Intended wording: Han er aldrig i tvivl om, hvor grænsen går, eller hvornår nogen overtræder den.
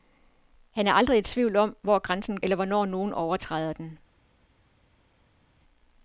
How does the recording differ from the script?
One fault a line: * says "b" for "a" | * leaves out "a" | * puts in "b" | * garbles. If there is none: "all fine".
* leaves out "går"